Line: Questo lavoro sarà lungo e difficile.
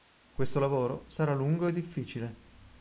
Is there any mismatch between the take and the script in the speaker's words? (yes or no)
no